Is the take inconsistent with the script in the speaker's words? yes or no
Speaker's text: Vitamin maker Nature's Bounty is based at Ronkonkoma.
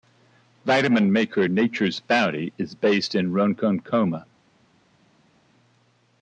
yes